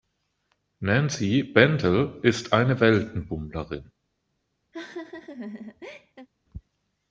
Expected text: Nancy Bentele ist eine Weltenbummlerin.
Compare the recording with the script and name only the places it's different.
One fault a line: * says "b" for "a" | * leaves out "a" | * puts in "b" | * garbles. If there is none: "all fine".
all fine